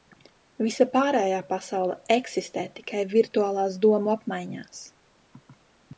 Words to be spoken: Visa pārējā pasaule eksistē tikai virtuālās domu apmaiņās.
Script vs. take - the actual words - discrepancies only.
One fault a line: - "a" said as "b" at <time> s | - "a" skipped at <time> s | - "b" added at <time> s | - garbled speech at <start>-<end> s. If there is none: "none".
none